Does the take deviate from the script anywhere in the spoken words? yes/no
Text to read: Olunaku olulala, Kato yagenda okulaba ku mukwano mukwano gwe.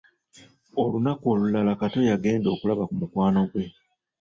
yes